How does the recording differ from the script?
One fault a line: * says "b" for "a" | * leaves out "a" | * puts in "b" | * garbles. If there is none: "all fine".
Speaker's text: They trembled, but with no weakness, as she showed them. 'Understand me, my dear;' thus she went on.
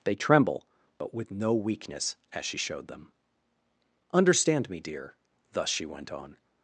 * says "tremble" for "trembled"
* leaves out "my"